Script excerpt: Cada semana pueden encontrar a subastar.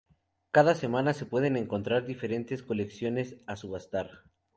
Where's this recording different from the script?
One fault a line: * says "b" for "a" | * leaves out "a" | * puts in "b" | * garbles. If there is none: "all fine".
* puts in "se"
* puts in "diferentes colecciones"